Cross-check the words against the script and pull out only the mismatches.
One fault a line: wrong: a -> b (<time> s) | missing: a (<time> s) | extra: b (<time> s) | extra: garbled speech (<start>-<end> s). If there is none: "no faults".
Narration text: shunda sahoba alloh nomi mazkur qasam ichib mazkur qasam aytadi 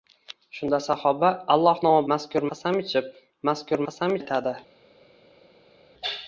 no faults